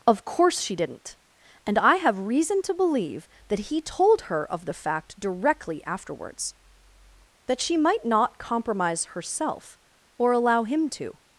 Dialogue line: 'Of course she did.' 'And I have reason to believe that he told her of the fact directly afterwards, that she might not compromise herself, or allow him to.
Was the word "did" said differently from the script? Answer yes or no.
yes